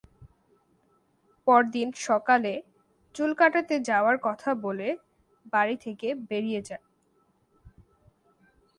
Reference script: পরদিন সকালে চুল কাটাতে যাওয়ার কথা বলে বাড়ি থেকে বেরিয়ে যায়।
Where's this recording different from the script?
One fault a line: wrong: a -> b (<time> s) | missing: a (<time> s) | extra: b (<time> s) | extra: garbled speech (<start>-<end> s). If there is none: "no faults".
no faults